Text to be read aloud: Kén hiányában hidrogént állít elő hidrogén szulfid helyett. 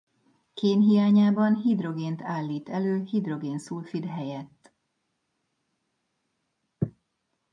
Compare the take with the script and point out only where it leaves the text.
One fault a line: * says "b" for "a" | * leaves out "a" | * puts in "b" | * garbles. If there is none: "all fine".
all fine